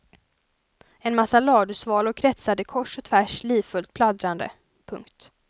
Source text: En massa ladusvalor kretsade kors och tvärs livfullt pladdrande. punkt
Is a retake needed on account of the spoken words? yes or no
no